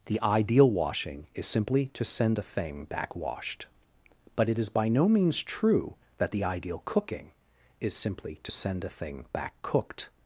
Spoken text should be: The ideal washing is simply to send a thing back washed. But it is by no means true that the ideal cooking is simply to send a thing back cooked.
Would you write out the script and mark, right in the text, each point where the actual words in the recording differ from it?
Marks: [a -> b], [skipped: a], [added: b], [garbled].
The ideal washing is simply to send a thing back washed. But it is by no means true that the ideal cooking is simply to send a thing back cooked.